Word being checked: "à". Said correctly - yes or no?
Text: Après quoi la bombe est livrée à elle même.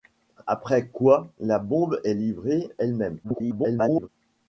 no